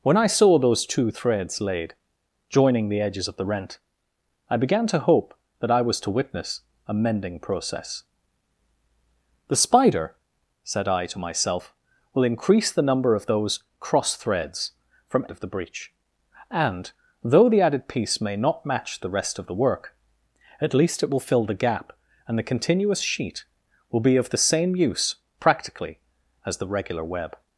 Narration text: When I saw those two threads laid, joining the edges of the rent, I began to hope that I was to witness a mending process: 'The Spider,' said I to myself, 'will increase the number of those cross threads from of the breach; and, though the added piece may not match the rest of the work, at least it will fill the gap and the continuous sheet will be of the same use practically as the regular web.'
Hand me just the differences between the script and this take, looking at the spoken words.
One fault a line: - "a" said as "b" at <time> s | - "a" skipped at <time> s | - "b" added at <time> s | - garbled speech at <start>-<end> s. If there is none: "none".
none